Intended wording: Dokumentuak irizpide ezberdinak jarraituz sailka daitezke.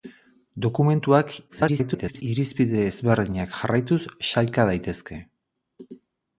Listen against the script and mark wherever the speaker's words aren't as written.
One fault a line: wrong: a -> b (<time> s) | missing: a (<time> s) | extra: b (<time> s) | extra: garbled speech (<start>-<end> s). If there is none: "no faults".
extra: garbled speech (1.5-2.2 s)